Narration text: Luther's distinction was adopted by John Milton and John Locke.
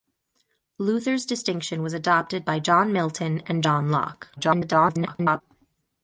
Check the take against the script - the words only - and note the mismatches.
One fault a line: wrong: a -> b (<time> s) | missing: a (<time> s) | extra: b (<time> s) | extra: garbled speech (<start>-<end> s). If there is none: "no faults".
extra: garbled speech (4.4-5.4 s)